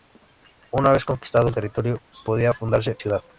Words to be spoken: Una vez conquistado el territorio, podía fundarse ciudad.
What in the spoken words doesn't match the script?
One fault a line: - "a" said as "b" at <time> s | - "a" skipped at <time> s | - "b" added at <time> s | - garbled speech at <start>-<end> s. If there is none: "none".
none